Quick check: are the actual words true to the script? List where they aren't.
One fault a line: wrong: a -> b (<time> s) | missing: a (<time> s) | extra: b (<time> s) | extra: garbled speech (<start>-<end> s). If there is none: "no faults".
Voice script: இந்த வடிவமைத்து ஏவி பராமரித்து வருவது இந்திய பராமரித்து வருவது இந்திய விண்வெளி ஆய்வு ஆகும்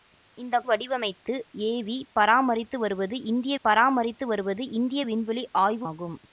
no faults